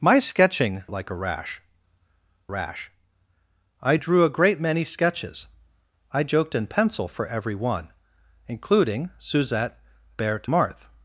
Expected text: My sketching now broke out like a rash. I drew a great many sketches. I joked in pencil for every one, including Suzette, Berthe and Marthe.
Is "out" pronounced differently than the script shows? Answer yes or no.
yes